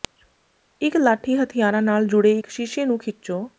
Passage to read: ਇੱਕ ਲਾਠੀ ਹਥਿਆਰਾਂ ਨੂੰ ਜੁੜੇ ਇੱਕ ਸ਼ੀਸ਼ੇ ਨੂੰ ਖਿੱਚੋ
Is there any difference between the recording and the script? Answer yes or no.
yes